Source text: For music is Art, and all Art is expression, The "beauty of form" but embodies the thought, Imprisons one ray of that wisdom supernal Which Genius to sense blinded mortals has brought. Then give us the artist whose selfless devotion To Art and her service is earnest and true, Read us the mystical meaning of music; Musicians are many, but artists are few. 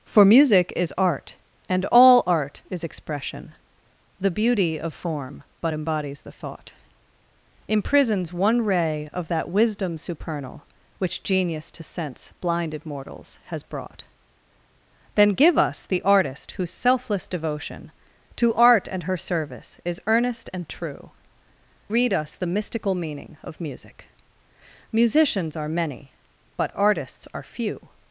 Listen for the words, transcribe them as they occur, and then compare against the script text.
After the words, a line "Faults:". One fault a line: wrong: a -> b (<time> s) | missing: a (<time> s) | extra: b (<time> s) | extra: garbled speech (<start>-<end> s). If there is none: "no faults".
For music is Art, and all Art is expression, The "beauty of form" but embodies the thought, Imprisons one ray of that wisdom supernal Which Genius to sense blinded mortals has brought. Then give us the artist whose selfless devotion To Art and her service is earnest and true, Read us the mystical meaning of music; Musicians are many, but artists are few.
Faults:
no faults